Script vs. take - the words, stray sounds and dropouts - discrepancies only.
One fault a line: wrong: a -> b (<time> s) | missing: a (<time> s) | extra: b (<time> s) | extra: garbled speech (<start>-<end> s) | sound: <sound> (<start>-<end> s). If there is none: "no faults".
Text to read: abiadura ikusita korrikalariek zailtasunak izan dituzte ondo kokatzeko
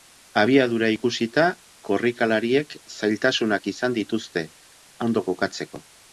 no faults